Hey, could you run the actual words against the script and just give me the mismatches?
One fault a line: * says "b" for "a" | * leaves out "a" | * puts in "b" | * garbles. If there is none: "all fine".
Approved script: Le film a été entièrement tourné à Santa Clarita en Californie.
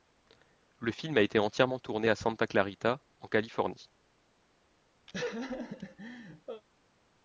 all fine